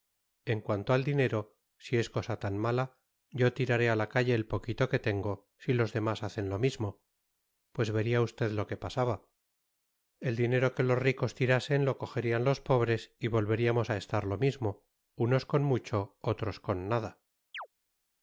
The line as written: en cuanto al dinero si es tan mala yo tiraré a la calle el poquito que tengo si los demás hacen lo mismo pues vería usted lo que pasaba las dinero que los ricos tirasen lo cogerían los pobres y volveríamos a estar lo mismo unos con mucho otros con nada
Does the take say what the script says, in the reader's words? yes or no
no